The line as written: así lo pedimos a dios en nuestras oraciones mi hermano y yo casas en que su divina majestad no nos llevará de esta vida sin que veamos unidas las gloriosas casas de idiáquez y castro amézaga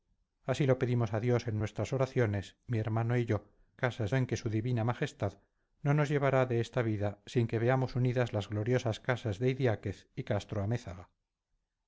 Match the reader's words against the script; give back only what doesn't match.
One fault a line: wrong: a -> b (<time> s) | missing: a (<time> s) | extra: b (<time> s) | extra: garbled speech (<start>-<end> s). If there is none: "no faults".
no faults